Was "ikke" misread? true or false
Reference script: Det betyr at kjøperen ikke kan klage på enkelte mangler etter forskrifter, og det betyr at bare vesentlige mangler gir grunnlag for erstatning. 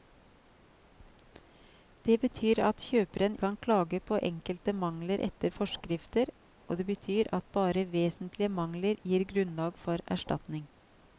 true